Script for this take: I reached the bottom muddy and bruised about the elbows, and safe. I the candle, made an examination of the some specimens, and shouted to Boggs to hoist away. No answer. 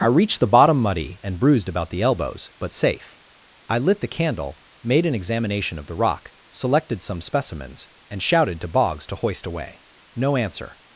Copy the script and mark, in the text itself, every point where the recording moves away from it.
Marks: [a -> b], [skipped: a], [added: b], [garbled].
I reached the bottom muddy and bruised about the elbows, [and -> but] safe. I [added: lit] the candle, made an examination of the [added: rock selected] some specimens, and shouted to Boggs to hoist away. No answer.